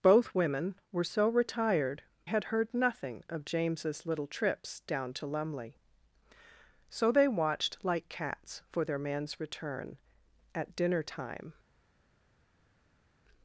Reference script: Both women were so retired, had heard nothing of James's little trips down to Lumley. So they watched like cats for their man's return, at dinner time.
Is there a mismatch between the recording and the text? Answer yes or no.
no